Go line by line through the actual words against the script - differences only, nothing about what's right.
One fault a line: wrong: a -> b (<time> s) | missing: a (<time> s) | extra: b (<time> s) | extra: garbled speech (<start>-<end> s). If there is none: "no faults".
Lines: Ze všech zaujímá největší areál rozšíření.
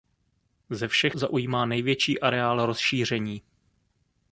no faults